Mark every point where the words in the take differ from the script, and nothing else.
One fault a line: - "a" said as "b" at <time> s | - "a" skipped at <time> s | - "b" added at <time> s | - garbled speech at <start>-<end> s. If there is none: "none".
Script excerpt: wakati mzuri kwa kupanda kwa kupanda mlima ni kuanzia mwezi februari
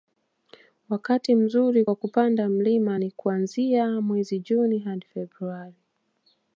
- "kwa kupanda" skipped at 2.5 s
- "juni hadi" added at 4.4 s